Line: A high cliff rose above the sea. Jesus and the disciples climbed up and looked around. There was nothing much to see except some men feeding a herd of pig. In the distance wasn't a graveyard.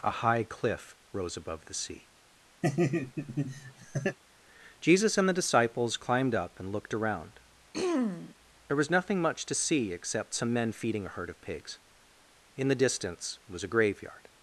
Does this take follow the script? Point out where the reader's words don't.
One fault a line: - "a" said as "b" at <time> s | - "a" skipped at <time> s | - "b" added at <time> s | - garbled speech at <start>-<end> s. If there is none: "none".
- "pig" said as "pigs" at 11.4 s
- "wasn't" said as "was" at 13.5 s